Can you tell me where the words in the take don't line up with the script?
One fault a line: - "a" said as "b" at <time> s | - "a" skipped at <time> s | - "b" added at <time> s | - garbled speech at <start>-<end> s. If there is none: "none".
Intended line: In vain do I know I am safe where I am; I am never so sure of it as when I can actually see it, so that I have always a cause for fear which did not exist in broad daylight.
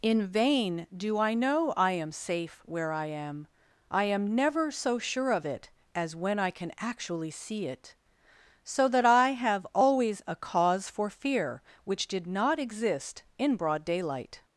none